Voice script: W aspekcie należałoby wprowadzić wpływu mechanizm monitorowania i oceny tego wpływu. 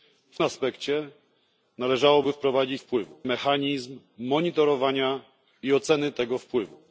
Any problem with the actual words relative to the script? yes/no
no